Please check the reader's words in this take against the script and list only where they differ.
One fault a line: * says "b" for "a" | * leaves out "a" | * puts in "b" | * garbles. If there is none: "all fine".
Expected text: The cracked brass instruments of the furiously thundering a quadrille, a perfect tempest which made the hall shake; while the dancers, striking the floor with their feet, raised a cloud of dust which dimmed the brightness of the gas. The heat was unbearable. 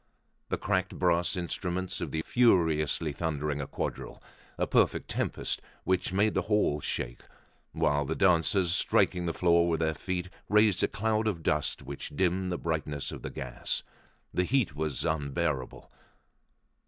all fine